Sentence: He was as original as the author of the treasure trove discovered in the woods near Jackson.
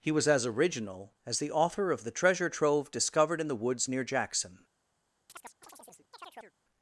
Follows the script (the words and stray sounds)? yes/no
no